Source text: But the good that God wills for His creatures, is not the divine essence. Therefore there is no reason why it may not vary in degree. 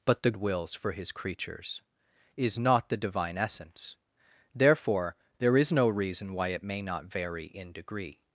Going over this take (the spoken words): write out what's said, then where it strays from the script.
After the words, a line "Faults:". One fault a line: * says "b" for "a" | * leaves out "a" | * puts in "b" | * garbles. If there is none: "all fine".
But the wills for His creatures, is not the divine essence. Therefore there is no reason why it may not vary in degree.
Faults:
* leaves out "good that God"